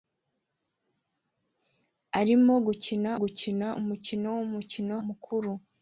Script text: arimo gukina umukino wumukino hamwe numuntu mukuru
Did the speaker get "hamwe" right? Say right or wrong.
wrong